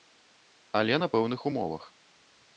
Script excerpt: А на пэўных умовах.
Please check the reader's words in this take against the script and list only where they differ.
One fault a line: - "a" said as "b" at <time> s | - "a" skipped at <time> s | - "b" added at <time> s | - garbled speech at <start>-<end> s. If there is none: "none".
- "А" said as "Але" at 0.8 s